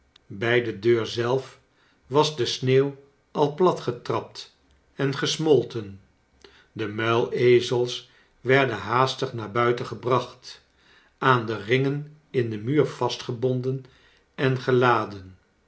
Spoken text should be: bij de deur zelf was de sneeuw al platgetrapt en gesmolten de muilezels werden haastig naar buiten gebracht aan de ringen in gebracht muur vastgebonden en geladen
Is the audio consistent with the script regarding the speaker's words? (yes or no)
no